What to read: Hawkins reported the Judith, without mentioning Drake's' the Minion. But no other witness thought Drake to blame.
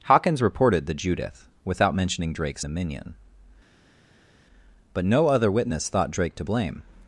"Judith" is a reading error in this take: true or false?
false